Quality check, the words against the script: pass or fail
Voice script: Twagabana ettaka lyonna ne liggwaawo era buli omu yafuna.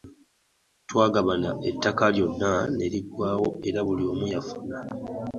pass